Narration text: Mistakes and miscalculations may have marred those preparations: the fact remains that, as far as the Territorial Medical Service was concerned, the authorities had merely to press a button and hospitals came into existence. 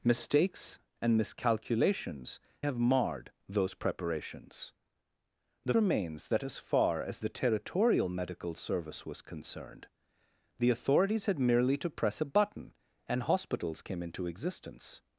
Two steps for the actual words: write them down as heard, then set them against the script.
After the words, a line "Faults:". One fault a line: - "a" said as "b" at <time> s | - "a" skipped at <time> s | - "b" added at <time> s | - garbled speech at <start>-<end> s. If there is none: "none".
Mistakes and miscalculations have marred those preparations: the remains that, as far as the Territorial Medical Service was concerned, the authorities had merely to press a button and hospitals came into existence.
Faults:
- "may" skipped at 2.4 s
- "fact" skipped at 5.7 s